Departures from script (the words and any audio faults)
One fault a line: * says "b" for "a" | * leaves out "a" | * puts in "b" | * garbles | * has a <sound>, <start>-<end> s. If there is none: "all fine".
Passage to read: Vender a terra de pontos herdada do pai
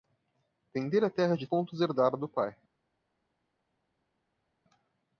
all fine